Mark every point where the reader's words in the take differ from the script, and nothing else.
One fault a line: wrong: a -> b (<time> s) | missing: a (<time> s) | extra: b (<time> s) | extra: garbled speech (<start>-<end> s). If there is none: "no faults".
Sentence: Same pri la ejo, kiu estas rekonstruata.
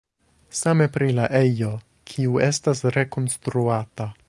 no faults